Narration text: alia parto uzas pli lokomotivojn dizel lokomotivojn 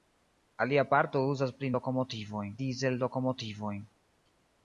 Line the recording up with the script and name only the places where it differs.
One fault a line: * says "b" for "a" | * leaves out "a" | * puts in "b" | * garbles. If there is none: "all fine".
all fine